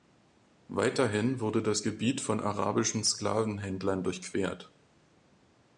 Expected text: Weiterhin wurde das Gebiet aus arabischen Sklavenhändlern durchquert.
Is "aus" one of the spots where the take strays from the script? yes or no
yes